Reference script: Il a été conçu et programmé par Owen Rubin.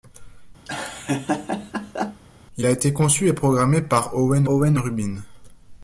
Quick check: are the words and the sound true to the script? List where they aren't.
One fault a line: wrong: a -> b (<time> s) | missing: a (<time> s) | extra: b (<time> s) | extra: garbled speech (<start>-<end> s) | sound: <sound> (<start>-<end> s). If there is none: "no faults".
sound: laugh (0.7-2.2 s)
extra: Owen (4.5 s)